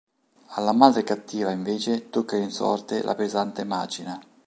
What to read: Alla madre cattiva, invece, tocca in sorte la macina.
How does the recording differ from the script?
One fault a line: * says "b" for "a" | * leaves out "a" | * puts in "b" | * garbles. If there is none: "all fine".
* puts in "pesante"